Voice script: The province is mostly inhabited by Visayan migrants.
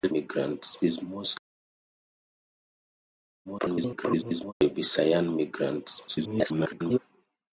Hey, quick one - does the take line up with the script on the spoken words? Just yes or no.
no